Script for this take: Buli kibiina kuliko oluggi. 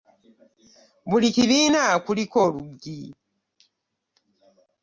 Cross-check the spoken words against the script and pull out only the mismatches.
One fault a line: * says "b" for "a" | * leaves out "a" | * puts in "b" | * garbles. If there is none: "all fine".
all fine